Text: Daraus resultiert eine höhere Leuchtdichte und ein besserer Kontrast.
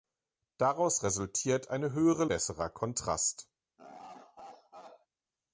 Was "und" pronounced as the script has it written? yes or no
no